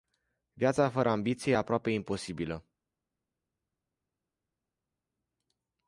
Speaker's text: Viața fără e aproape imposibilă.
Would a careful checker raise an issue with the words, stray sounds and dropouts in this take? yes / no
yes